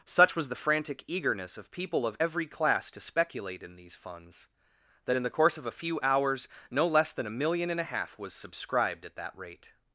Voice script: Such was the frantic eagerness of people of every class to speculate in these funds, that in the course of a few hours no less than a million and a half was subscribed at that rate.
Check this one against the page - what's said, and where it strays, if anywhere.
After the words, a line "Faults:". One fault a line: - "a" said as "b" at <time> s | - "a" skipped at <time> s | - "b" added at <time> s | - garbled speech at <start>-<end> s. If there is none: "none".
Such was the frantic eagerness of people of every class to speculate in these funds, that in the course of a few hours no less than a million and a half was subscribed at that rate.
Faults:
none